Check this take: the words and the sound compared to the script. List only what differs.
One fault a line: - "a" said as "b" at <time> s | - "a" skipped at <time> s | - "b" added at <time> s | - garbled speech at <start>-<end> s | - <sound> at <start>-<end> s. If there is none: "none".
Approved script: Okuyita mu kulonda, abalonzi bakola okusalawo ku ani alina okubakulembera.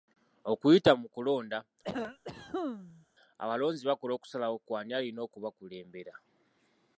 - cough at 1.8-3.1 s